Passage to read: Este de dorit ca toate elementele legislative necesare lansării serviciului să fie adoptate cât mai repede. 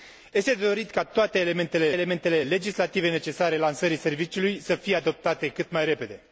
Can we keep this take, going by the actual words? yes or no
no